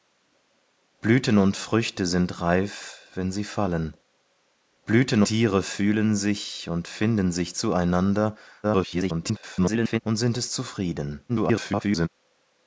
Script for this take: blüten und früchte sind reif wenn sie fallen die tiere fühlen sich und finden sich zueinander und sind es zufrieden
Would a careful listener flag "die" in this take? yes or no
yes